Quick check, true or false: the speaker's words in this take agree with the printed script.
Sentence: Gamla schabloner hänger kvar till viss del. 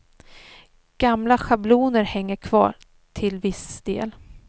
true